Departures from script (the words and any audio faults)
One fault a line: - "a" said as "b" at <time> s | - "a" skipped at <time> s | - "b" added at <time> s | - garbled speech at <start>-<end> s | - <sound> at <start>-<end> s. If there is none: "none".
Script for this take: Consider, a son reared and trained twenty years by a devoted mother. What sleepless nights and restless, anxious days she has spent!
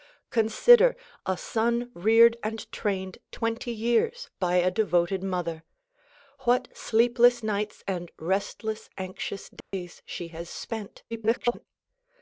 - dropout at 9.6-9.7 s
- garbled speech at 11.1-11.7 s